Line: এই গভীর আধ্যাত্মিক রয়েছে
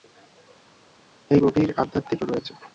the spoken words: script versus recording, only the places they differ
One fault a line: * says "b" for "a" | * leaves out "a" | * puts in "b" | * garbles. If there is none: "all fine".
all fine